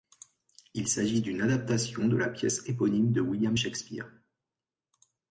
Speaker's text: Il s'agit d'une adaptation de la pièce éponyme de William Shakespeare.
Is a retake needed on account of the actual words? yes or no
no